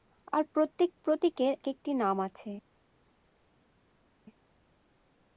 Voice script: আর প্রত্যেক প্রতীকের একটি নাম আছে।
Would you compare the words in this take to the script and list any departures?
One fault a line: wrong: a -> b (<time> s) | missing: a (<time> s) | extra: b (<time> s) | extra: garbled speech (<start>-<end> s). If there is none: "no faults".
no faults